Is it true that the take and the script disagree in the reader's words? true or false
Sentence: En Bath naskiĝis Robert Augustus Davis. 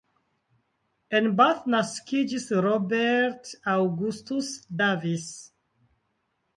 false